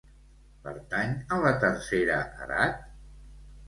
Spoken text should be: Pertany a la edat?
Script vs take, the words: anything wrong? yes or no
yes